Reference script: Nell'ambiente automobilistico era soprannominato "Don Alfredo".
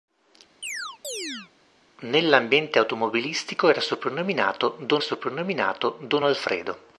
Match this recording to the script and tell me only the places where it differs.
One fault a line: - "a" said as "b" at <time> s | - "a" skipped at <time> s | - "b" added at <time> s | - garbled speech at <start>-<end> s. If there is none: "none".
- "soprannominato Don" added at 5.0 s